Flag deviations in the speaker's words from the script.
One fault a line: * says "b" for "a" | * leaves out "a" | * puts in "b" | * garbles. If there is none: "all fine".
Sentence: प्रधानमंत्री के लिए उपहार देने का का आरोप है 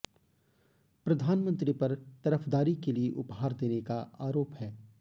* puts in "पर तरफदारी"
* leaves out "का"